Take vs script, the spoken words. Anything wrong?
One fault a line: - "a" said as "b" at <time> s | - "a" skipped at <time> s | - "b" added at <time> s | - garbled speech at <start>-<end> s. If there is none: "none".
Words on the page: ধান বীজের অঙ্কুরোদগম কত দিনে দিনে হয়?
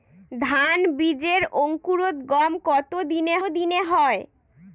none